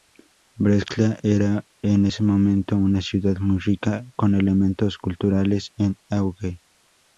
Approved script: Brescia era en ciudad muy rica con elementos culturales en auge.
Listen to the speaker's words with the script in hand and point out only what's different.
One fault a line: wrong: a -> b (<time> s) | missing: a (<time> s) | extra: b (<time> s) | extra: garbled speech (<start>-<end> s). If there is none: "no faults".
extra: ese momento una (2.0 s)